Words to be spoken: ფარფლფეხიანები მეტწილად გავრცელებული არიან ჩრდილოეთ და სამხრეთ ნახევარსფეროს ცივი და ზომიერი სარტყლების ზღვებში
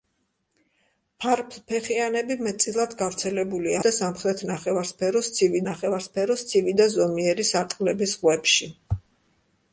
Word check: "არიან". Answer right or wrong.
wrong